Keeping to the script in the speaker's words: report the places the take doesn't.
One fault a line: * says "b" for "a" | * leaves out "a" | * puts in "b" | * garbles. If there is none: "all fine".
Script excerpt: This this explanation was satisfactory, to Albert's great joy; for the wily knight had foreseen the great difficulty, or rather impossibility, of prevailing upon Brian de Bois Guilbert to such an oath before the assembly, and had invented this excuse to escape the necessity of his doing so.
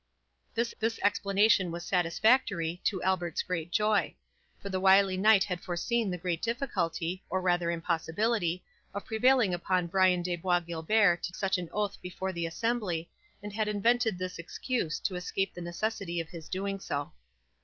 all fine